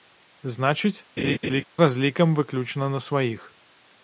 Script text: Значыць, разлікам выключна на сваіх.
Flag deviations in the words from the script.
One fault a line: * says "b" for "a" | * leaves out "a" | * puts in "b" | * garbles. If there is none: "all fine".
all fine